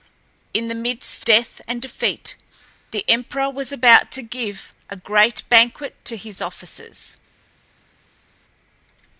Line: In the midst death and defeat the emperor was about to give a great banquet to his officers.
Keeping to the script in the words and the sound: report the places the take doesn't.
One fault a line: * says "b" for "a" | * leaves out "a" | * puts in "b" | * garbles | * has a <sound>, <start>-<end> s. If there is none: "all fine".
all fine